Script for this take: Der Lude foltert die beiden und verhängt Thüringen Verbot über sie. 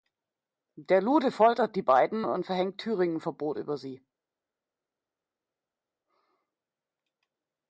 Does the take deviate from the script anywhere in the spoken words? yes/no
no